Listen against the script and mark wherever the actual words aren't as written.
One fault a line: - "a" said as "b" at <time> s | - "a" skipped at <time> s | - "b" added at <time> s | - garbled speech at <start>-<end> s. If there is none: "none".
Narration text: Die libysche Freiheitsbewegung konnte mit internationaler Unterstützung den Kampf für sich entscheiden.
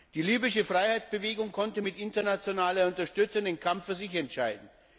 none